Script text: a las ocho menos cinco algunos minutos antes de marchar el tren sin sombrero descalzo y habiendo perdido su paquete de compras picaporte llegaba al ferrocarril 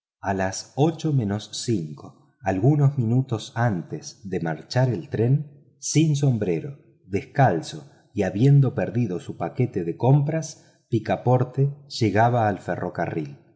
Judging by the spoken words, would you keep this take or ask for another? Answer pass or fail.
pass